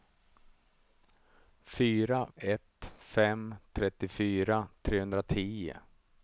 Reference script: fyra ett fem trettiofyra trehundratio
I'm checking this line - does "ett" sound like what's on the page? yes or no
yes